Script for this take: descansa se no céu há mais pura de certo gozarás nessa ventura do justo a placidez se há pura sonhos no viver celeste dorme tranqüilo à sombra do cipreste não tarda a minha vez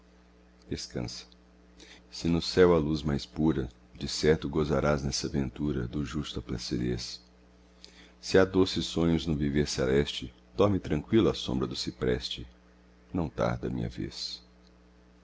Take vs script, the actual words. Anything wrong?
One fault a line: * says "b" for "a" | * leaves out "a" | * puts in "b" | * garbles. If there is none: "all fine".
* puts in "luz"
* says "doces" for "pura"